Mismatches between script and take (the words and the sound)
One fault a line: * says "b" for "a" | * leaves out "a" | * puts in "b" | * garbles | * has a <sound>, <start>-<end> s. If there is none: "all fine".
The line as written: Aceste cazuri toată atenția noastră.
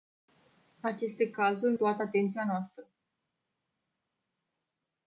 all fine